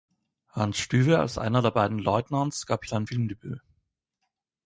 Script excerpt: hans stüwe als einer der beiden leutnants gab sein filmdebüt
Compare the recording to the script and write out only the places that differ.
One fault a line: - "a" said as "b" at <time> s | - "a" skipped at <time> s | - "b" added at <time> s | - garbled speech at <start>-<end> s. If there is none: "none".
none